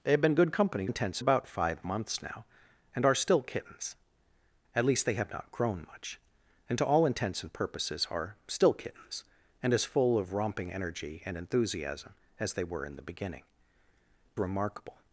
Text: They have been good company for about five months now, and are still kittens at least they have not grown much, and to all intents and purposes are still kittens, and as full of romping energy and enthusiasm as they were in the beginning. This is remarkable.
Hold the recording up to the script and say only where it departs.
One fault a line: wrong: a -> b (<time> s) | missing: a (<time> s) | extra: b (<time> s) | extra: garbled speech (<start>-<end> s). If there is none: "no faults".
wrong: for -> intents (0.8 s)
missing: This is (13.4 s)